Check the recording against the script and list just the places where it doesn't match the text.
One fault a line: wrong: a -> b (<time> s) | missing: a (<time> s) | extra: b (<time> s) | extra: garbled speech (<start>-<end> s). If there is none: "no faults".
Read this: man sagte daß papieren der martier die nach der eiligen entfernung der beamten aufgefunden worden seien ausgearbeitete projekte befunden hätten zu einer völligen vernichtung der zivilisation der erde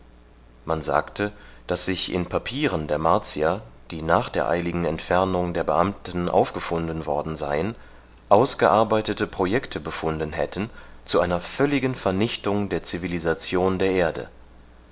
extra: sich in (1.9 s)